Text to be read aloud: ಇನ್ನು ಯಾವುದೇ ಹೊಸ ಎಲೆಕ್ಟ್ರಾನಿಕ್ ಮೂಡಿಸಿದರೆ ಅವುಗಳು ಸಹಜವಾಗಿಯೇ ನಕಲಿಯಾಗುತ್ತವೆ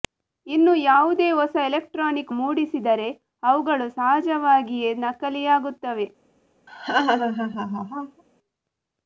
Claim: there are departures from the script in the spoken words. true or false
false